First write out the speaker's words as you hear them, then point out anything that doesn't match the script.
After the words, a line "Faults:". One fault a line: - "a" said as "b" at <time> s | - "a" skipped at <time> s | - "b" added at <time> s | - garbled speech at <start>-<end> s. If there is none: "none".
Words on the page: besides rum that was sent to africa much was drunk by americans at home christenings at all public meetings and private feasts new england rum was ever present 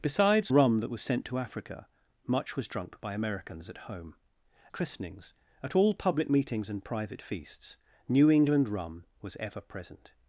besides rum that was sent to africa much was drunk by americans at home christenings at all public meetings and private feasts new england rum was ever present
Faults:
none